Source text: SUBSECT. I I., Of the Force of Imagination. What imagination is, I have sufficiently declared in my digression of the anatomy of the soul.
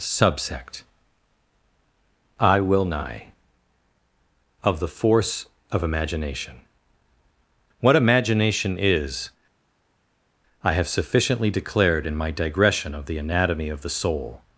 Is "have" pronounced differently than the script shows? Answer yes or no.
no